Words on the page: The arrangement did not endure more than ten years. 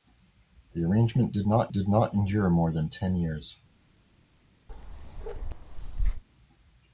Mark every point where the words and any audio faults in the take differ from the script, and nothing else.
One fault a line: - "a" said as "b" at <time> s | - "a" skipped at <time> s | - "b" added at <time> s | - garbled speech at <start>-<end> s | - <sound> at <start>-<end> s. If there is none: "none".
- "did not" added at 1.7 s
- bark at 4.7-6.2 s